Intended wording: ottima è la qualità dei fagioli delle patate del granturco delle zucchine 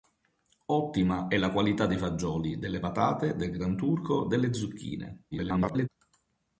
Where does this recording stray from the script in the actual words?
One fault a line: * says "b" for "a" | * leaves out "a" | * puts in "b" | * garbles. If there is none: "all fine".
* garbles